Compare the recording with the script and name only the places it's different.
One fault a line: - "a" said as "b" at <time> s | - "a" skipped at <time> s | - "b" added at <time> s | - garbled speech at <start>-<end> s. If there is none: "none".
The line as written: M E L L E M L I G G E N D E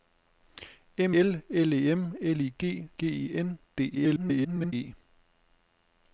- "E" skipped at 1.1 s
- garbled speech at 3.9-4.7 s